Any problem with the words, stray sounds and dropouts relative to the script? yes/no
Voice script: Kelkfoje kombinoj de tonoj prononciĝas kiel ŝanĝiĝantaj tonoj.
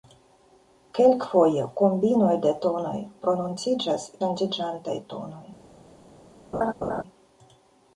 yes